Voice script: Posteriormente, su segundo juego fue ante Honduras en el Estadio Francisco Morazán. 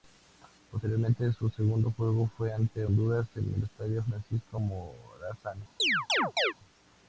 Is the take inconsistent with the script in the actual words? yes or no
no